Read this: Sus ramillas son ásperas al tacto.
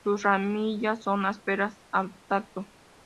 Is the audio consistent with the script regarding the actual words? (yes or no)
yes